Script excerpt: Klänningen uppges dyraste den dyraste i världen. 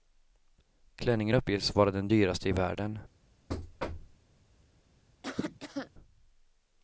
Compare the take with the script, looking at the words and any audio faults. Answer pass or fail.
fail